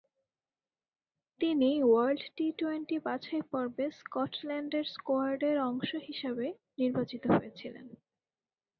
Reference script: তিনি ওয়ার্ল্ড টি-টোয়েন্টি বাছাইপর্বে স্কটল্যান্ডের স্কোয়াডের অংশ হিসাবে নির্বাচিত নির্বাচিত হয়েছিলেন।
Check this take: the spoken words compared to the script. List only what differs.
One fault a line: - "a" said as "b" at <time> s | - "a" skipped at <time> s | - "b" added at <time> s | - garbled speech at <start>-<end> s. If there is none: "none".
- "নির্বাচিত" skipped at 7.2 s